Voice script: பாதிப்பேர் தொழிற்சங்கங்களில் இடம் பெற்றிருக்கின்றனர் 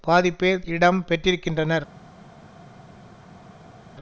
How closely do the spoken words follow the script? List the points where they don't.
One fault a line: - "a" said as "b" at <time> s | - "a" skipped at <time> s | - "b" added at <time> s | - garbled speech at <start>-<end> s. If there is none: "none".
- "தொழிற்சங்கங்களில்" skipped at 0.7 s